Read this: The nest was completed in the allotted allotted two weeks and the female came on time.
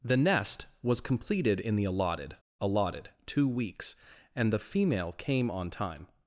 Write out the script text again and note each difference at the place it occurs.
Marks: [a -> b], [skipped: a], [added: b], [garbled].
The nest was completed in the allotted allotted two weeks and the female came on time.